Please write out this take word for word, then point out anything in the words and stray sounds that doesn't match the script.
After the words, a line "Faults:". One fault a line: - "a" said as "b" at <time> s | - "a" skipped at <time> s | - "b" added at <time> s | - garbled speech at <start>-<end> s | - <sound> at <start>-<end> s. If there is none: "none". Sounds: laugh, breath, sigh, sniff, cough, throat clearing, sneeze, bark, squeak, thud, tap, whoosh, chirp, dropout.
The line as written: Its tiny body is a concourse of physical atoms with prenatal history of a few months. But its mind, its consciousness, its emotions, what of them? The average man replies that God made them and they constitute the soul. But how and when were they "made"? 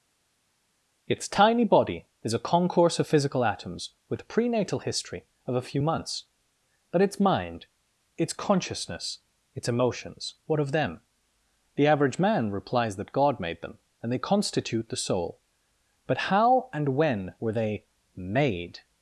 Its tiny body is a concourse of physical atoms with prenatal history of a few months. But its mind, its consciousness, its emotions, what of them? The average man replies that God made them and they constitute the soul. But how and when were they "made"?
Faults:
none